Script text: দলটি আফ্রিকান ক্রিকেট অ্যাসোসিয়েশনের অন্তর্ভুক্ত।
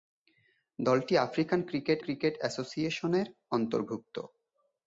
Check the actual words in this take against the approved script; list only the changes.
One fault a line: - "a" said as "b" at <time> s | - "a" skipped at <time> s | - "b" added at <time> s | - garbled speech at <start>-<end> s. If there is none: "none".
- "ক্রিকেট" added at 2.0 s